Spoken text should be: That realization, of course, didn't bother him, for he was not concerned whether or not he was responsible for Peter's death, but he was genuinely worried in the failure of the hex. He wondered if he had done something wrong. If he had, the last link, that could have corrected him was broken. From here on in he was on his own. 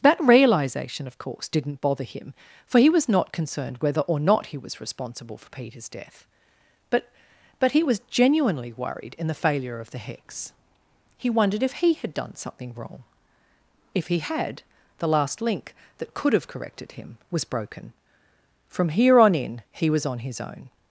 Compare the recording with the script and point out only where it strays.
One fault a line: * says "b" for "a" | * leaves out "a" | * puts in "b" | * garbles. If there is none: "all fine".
* puts in "but"